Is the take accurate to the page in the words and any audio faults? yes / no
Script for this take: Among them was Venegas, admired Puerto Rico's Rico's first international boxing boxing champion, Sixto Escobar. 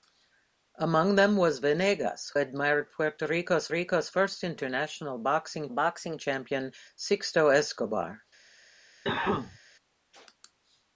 no